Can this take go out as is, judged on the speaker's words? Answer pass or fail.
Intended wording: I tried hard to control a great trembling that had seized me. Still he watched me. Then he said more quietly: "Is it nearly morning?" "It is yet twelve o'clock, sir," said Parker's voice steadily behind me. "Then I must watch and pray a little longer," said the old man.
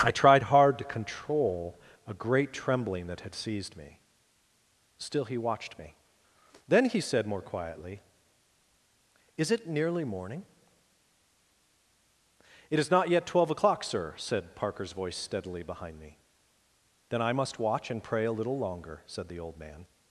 fail